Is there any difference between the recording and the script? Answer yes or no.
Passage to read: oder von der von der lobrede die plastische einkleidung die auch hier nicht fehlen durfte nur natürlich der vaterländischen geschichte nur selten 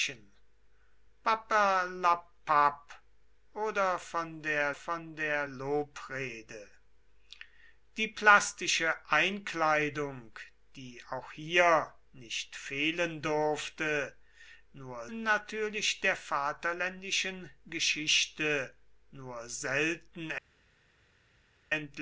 no